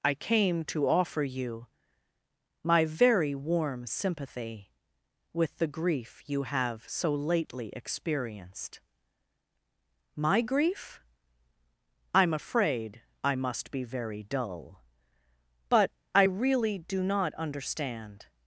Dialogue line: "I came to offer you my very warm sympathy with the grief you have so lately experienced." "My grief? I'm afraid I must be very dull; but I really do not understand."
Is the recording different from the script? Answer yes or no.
no